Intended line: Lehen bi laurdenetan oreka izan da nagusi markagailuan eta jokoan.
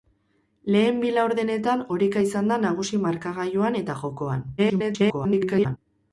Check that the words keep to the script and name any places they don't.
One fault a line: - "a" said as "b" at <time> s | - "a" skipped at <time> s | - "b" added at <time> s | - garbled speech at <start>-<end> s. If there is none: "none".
- garbled speech at 4.6-5.8 s